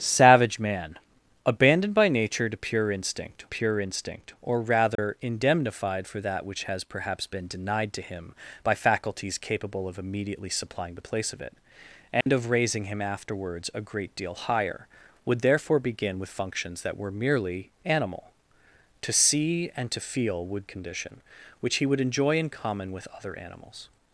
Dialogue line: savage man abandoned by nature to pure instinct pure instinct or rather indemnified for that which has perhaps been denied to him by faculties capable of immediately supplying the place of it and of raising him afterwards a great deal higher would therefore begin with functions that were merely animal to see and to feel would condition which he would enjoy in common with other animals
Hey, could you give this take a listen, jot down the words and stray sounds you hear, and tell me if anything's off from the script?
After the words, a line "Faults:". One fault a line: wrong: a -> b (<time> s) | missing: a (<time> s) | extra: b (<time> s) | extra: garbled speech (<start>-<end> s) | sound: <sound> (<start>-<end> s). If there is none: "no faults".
savage man abandoned by nature to pure instinct pure instinct or rather indemnified for that which has perhaps been denied to him by faculties capable of immediately supplying the place of it and of raising him afterwards a great deal higher would therefore begin with functions that were merely animal to see and to feel would condition which he would enjoy in common with other animals
Faults:
sound: dropout (4.9-5.0 s)
sound: dropout (12.2-12.3 s)